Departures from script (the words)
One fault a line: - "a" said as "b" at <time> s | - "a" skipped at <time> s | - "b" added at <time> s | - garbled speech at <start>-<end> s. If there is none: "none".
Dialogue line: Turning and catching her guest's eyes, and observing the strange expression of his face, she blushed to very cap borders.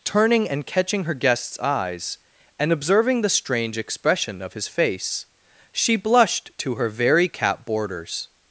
- "her" added at 6.8 s